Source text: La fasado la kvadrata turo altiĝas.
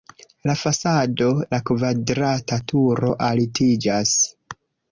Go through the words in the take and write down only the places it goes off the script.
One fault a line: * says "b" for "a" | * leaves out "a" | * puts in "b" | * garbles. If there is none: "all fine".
all fine